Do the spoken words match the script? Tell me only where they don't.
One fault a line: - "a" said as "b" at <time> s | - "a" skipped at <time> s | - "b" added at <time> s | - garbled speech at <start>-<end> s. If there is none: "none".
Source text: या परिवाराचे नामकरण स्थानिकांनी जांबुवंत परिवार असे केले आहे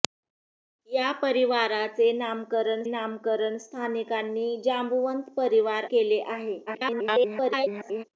- "नामकरण" added at 2.9 s
- "असे" skipped at 5.8 s
- garbled speech at 6.7-8.0 s